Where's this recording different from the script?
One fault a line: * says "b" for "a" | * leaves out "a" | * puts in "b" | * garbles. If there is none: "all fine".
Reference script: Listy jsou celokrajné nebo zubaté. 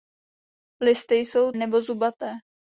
* leaves out "celokrajné"